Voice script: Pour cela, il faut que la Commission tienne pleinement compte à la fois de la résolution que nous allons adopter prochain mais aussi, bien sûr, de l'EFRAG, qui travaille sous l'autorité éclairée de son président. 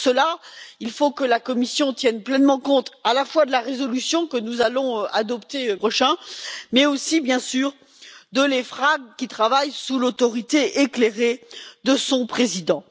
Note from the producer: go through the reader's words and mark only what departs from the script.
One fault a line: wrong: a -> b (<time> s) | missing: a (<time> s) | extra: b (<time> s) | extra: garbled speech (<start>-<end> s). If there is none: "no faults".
no faults